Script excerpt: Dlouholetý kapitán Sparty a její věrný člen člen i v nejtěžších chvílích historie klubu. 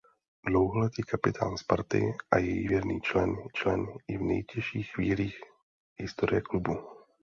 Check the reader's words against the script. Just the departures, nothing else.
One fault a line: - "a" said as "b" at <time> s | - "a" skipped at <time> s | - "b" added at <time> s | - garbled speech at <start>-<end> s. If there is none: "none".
none